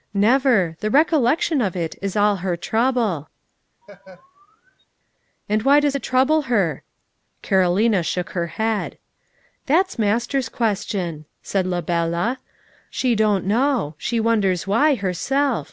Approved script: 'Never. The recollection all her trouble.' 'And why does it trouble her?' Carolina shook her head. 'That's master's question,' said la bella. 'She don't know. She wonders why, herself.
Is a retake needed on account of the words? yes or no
yes